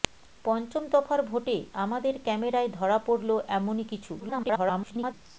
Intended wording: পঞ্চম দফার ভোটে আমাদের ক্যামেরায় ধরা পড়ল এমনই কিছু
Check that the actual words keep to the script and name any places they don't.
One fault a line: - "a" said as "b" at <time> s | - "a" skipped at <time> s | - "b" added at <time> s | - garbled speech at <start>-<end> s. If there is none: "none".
- garbled speech at 4.2-5.1 s